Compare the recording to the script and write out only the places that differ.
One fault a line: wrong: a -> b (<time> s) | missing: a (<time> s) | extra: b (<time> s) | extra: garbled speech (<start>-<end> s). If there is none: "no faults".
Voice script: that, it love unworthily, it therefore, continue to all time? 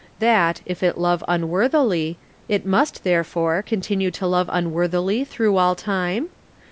extra: if (0.7 s)
extra: must (2.6 s)
extra: love unworthily through (4.3 s)